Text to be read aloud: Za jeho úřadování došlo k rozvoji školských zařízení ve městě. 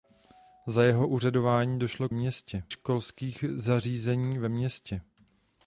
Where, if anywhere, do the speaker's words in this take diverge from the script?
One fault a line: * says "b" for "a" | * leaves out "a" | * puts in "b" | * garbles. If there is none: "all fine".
* says "městě" for "rozvoji"